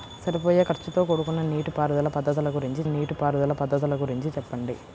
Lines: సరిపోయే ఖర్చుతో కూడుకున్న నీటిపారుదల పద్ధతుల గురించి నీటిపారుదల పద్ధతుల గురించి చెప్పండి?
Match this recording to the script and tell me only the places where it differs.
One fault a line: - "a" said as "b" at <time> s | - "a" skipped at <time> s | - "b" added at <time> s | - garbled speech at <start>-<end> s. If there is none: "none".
none